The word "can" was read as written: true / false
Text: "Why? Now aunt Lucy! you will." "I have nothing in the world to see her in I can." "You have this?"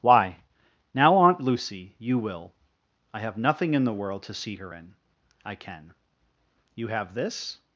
true